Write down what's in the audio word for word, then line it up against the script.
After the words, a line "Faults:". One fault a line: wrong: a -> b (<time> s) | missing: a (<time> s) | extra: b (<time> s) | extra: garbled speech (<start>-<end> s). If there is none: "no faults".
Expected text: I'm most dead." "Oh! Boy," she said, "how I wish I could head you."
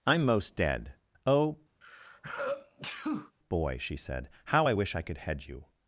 I'm most dead." "Oh! Boy," she said, "how I wish I could head you."
Faults:
no faults